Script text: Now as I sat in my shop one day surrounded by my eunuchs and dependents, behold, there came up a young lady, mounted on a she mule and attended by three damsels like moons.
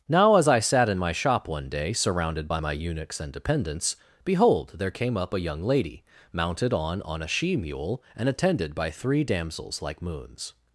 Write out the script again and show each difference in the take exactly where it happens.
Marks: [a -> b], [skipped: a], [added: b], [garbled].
Now as I sat in my shop one day surrounded by my eunuchs and dependents, behold, there came up a young lady, mounted on [added: on] a she mule and attended by three damsels like moons.